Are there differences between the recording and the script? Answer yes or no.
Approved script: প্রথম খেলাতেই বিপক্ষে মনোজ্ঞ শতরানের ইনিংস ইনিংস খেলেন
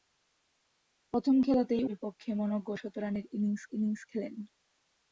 no